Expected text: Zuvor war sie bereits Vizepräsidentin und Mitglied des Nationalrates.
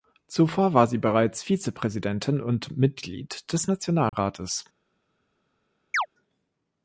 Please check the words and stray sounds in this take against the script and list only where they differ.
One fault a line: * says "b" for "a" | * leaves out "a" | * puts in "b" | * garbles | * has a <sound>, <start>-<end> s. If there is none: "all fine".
* has a dropout, 4.1-4.1 s
* has a chirp, 5.9-6.1 s